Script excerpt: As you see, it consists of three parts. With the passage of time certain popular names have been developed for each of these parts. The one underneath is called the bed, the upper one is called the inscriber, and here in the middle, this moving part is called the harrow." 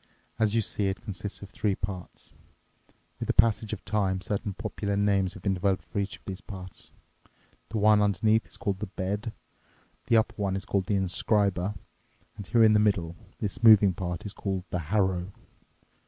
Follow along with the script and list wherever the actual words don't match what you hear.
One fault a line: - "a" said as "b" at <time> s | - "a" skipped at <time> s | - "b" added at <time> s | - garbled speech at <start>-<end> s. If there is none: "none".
none